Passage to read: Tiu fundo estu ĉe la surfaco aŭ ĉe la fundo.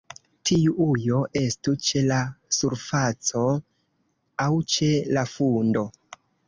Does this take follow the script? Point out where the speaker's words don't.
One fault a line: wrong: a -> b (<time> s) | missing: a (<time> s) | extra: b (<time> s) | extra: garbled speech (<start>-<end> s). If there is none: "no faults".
wrong: fundo -> ujo (0.8 s)